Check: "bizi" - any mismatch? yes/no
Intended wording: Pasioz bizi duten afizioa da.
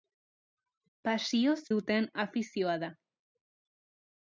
yes